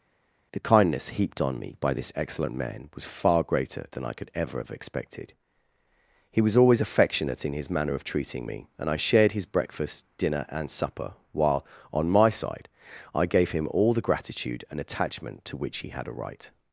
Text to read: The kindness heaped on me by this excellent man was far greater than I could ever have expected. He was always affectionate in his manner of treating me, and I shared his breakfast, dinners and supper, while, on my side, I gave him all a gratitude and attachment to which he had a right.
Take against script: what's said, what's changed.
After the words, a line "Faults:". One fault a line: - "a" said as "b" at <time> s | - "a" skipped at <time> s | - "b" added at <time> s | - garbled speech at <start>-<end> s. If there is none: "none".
The kindness heaped on me by this excellent man was far greater than I could ever have expected. He was always affectionate in his manner of treating me, and I shared his breakfast, dinner and supper, while, on my side, I gave him all the gratitude and attachment to which he had a right.
Faults:
- "dinners" said as "dinner" at 10.2 s
- "a" said as "the" at 13.9 s